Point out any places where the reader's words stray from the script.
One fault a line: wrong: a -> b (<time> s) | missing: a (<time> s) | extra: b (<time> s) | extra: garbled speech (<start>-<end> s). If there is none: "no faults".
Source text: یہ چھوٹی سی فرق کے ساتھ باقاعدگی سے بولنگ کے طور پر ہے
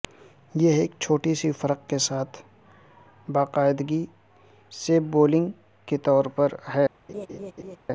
extra: ایک (0.7 s)